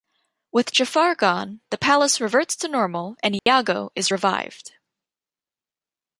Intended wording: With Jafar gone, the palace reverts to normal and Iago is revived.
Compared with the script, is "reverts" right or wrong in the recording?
right